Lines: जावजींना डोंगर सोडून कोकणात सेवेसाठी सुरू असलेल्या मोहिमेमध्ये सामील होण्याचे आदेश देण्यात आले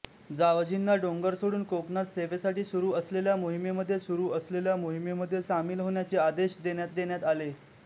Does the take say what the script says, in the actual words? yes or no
no